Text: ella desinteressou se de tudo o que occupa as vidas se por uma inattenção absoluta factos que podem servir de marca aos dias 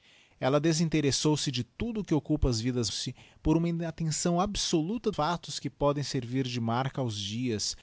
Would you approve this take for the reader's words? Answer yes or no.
yes